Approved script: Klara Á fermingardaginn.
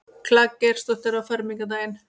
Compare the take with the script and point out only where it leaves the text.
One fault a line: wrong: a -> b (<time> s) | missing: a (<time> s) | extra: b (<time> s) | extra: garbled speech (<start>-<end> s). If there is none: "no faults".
extra: Geirsdóttir (0.6 s)